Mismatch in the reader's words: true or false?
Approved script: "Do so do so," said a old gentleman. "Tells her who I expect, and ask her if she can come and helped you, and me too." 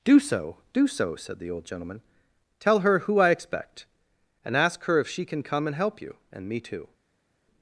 true